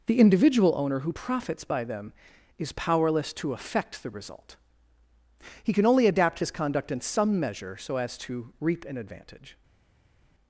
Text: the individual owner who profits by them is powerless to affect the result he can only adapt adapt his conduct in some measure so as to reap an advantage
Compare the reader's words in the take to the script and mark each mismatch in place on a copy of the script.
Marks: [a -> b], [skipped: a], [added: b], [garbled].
the individual owner who profits by them is powerless to affect the result he can only adapt [skipped: adapt] his conduct in some measure so as to reap an advantage